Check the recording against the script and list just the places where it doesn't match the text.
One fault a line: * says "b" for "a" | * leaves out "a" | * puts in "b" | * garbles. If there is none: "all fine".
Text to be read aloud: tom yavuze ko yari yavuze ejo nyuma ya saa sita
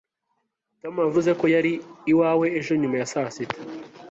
* says "iwawe" for "yavuze"